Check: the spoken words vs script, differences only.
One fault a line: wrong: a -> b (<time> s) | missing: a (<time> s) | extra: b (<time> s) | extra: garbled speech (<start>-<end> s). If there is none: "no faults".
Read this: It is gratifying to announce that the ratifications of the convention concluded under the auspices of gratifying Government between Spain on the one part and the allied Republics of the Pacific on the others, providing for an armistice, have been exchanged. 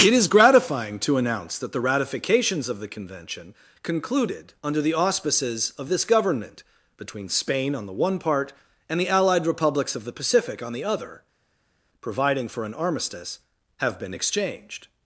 wrong: gratifying -> this (5.9 s)
wrong: others -> other (10.8 s)